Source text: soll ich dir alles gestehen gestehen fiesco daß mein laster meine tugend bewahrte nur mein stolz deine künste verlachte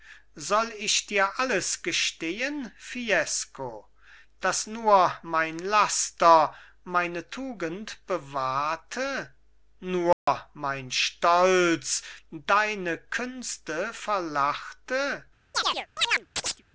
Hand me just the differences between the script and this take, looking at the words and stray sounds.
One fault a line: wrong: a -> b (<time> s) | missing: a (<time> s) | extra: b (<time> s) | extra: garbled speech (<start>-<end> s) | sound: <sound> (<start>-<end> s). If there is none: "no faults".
missing: gestehen (2.7 s)
extra: nur (4.7 s)
sound: dropout (10.1-10.3 s)
sound: chirp (15.5-16.6 s)